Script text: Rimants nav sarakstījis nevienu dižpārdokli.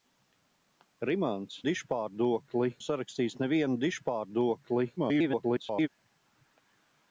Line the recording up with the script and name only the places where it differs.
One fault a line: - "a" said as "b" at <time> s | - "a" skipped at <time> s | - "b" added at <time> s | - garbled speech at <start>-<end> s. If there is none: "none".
- "nav" said as "dižpārdokli" at 1.7 s
- garbled speech at 5.0-5.9 s